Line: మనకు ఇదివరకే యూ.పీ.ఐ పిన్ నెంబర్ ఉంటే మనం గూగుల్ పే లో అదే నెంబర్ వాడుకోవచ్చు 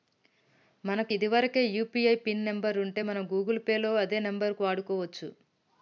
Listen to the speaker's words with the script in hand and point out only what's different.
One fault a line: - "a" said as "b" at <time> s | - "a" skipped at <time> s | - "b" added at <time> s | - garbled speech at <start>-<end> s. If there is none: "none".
none